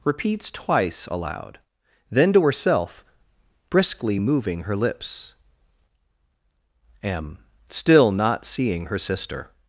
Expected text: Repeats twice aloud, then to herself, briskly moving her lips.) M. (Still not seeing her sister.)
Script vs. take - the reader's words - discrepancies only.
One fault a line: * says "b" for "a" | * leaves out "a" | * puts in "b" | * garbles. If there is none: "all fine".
all fine